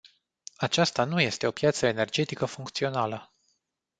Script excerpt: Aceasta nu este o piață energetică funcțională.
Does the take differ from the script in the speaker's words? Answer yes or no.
no